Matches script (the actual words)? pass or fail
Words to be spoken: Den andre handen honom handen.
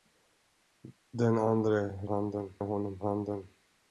pass